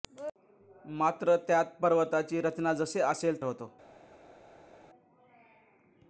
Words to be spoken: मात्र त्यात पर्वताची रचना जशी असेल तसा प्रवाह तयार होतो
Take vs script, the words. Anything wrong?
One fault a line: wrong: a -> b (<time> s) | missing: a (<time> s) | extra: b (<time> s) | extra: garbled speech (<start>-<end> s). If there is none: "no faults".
missing: तसा प्रवाह तयार (3.4 s)